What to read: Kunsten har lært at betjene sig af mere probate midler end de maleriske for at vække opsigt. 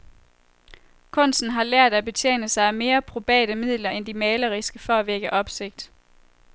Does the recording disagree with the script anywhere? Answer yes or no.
no